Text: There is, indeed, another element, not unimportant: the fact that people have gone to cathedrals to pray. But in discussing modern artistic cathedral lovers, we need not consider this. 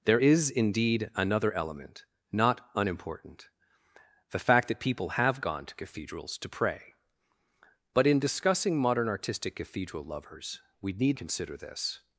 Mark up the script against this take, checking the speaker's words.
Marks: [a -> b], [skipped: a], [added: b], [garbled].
There is, indeed, another element, not unimportant: the fact that people have gone to cathedrals to pray. But in discussing modern artistic cathedral lovers, we need [skipped: not] consider this.